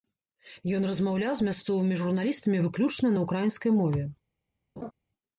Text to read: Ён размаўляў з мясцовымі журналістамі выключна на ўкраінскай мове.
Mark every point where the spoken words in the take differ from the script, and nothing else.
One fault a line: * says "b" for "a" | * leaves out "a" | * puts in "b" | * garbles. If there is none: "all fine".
all fine